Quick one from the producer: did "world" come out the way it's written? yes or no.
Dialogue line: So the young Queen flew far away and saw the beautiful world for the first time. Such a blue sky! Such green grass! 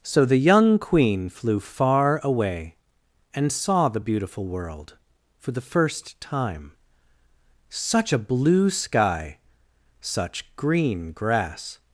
yes